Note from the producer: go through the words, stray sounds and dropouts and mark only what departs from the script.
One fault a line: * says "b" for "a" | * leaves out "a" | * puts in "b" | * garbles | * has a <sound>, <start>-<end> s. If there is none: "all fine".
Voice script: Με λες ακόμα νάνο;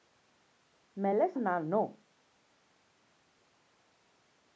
* leaves out "ακόμα"